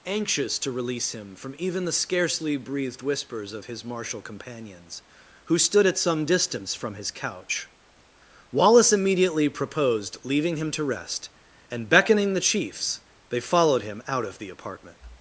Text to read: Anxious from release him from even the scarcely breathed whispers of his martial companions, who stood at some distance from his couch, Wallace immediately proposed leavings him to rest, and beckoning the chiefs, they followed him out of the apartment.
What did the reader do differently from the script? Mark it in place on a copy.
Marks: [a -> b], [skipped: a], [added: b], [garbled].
Anxious [from -> to] release him from even the scarcely breathed whispers of his martial companions, who stood at some distance from his couch, Wallace immediately proposed [leavings -> leaving] him to rest, and beckoning the chiefs, they followed him out of the apartment.